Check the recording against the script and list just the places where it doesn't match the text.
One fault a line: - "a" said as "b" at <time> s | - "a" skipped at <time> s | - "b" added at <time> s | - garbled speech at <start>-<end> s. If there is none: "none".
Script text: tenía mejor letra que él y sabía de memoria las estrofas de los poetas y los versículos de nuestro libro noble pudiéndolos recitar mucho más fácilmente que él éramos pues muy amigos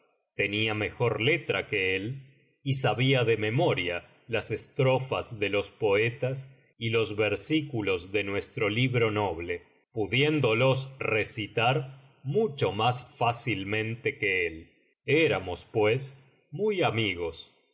none